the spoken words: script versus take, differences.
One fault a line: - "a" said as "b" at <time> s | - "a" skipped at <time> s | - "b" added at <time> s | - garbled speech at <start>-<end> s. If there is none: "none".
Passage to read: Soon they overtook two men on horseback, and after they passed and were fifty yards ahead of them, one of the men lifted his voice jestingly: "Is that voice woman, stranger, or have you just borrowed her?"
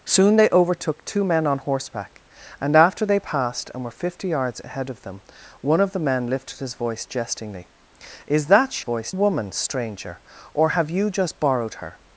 none